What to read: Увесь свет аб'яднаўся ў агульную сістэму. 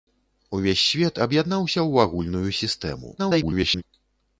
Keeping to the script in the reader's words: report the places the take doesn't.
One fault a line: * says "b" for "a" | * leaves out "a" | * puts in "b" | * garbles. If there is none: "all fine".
* garbles